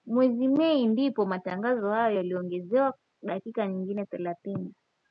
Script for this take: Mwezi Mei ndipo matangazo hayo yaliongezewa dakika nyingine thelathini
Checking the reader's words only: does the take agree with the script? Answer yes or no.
yes